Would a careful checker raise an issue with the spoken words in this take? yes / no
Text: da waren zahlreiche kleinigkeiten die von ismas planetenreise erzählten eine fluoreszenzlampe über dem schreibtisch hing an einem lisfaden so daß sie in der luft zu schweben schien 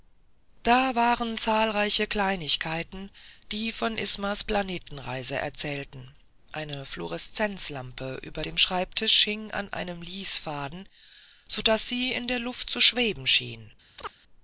no